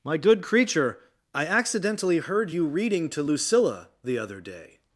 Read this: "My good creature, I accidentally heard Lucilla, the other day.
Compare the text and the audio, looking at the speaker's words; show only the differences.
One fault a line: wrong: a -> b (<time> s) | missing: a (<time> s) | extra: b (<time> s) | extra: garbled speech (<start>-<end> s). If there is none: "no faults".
extra: you reading to (2.5 s)